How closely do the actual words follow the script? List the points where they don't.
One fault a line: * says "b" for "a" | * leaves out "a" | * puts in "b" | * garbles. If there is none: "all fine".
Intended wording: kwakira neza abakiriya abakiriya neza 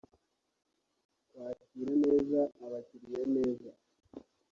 * leaves out "abakiriya"